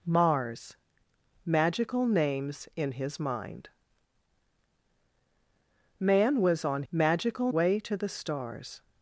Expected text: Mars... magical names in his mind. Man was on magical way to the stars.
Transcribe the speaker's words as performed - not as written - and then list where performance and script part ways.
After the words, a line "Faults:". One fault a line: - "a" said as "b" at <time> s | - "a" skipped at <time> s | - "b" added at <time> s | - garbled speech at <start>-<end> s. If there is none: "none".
Mars... magical names in his mind. Man was on magical way to the stars.
Faults:
none